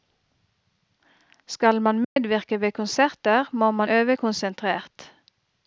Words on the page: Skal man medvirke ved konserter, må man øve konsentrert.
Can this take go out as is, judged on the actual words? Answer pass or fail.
pass